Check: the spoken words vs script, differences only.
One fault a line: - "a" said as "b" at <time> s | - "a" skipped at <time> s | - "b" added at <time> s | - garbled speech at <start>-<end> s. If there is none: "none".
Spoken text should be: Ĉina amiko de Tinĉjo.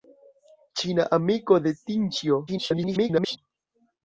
- garbled speech at 2.5-3.4 s